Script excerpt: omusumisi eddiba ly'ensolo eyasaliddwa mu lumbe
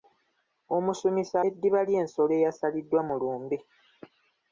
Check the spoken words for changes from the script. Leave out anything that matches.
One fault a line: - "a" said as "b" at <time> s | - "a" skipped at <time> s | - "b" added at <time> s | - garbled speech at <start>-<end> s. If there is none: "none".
none